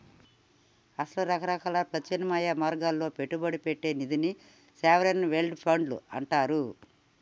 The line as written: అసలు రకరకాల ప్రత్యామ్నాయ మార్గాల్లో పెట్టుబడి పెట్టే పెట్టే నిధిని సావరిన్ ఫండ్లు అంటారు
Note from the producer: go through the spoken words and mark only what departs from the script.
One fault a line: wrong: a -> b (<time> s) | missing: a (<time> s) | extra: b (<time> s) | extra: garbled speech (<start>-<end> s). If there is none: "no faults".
missing: పెట్టే (3.9 s)
extra: వెల్డ్ (5.3 s)